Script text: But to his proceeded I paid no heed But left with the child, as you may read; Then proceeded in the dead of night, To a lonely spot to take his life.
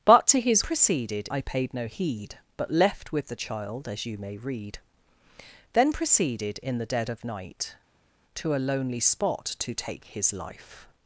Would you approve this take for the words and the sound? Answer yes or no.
yes